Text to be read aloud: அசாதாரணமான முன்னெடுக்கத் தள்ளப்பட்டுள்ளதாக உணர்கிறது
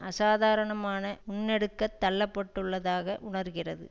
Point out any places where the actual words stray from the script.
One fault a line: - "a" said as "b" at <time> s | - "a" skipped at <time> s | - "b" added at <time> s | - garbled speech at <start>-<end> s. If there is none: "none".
none